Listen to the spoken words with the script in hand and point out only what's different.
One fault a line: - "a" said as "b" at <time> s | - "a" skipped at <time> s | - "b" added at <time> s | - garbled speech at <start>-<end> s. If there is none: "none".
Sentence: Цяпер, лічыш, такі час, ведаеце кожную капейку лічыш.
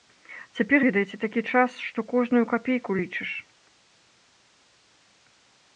- "лічыш" said as "ведаеце" at 0.8 s
- "ведаеце" said as "што" at 1.9 s